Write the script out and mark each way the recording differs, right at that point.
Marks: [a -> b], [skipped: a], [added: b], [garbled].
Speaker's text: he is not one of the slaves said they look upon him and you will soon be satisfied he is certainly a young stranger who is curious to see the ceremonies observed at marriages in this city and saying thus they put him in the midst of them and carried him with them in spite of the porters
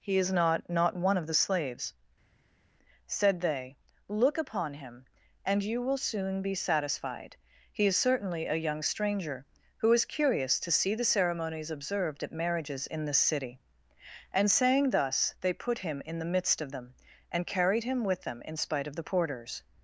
he is not [added: not] one of the slaves said they look upon him and you will soon be satisfied he is certainly a young stranger who is curious to see the ceremonies observed at marriages in this city and saying thus they put him in the midst of them and carried him with them in spite of the porters